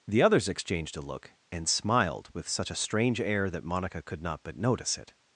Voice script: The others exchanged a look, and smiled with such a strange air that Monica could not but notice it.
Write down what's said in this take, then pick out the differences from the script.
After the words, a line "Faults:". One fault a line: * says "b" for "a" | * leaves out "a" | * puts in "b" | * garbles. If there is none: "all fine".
The others exchanged a look, and smiled with such a strange air that Monica could not but notice it.
Faults:
all fine